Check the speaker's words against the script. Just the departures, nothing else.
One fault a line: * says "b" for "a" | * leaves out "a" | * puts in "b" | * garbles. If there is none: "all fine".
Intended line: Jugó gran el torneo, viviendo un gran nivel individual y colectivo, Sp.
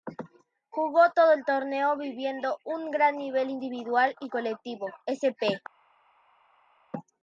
* says "todo" for "gran"